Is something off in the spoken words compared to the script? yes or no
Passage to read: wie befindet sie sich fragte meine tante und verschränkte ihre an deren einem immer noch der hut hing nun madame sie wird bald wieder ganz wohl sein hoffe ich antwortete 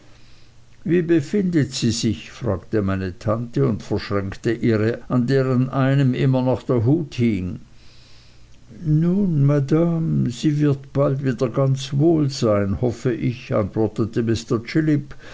no